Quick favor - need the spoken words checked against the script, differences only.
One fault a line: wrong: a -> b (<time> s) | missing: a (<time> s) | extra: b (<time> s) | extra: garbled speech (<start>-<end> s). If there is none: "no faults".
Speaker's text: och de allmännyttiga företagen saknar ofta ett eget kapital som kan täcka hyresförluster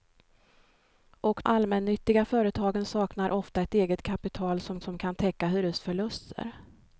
missing: de (1.4 s)
extra: som (4.8 s)